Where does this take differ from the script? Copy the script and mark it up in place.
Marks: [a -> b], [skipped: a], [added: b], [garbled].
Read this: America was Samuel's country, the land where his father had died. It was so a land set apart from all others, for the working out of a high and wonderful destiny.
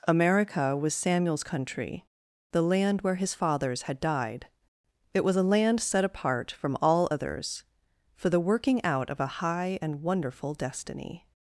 America was Samuel's country, the land where his [father -> fathers] had died. It was [skipped: so] a land set apart from all others, for the working out of a high and wonderful destiny.